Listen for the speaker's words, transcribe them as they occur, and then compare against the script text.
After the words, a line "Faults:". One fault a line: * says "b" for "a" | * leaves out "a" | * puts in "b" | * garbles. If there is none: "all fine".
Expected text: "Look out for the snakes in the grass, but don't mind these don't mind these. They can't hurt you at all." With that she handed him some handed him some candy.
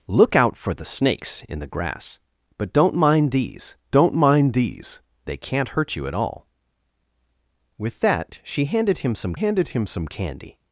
"Look out for the snakes in the grass, but don't mind these don't mind these. They can't hurt you at all." With that she handed him some handed him some candy.
Faults:
all fine